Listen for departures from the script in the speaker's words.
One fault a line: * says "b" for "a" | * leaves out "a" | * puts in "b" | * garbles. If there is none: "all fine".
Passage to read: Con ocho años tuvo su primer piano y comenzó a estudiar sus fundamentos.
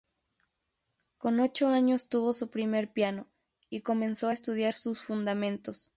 all fine